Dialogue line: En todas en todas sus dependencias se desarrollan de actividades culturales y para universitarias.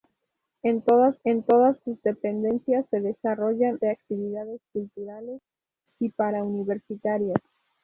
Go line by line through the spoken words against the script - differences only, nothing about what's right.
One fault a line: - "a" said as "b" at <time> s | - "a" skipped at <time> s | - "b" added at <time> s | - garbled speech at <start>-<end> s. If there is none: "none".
none